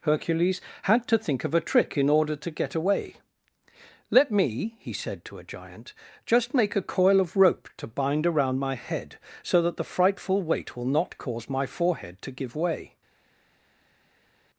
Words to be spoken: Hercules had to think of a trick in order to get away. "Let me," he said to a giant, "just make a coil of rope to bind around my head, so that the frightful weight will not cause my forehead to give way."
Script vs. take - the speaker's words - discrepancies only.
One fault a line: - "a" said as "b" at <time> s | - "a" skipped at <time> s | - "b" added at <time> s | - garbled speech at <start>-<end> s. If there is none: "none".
none